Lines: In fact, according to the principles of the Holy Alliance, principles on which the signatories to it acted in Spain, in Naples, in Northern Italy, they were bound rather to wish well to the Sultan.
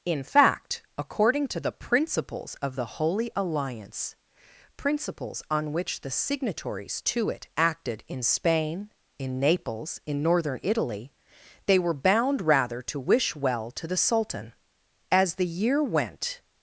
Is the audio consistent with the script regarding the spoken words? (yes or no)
no